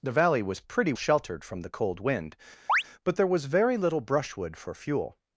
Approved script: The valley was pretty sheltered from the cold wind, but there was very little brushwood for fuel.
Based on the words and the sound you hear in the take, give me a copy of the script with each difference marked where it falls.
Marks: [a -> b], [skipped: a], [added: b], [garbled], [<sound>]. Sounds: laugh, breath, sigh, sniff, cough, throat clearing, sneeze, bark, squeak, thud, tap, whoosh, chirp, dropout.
The valley was pretty sheltered from the cold wind, [chirp] but there was very little brushwood for fuel.